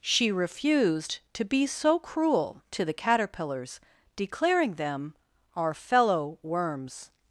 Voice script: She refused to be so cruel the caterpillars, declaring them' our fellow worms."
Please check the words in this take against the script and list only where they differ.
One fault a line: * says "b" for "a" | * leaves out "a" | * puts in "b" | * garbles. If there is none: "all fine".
* puts in "to"